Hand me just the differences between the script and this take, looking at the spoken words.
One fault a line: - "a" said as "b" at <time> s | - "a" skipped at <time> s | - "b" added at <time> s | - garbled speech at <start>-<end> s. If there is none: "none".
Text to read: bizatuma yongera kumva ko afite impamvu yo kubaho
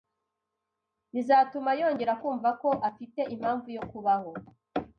none